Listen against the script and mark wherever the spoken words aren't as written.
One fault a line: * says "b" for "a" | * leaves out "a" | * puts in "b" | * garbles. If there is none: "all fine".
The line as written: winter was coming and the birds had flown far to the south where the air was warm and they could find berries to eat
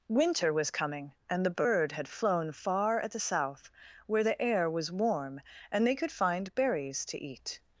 * says "bird" for "birds"
* says "at" for "to"